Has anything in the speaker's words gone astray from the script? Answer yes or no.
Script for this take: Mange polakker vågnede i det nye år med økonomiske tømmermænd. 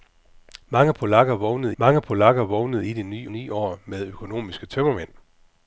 yes